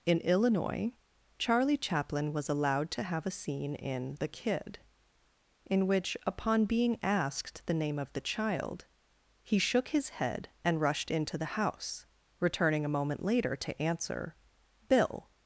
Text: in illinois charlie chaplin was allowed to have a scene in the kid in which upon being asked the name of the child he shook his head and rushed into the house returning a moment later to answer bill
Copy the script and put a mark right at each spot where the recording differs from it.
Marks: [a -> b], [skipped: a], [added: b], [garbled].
in illinois charlie chaplin was allowed to have a scene in the kid in which upon being asked the name of the child he shook his head and rushed into the house returning a moment later to answer bill